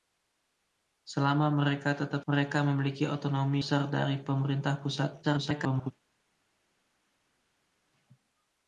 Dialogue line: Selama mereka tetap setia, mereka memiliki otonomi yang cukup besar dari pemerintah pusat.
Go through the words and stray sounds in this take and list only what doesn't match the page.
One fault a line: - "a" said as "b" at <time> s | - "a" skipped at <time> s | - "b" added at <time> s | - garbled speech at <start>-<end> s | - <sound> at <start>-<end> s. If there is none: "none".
- "setia" skipped at 2.2 s
- "yang cukup" skipped at 3.6 s
- garbled speech at 5.2-5.9 s